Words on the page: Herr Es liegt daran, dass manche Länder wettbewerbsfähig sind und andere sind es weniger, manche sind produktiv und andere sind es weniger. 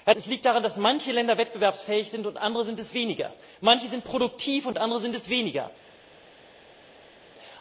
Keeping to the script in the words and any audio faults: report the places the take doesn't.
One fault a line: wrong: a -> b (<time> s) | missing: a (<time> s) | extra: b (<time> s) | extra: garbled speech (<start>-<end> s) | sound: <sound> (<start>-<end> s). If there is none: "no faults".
no faults